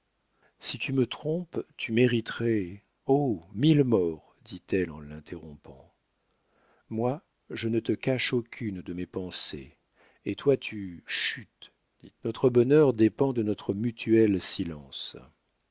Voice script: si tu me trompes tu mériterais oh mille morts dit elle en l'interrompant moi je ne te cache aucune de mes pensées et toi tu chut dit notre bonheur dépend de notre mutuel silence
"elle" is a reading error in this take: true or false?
false